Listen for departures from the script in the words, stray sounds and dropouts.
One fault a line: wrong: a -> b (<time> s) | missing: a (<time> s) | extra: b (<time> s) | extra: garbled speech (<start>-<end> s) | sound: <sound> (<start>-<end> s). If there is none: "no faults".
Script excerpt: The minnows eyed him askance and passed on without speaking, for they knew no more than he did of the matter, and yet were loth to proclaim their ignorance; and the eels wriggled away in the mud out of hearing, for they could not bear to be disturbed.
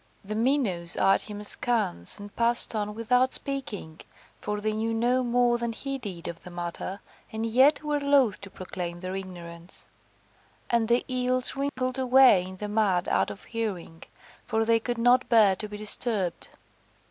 sound: dropout (11.7-11.8 s)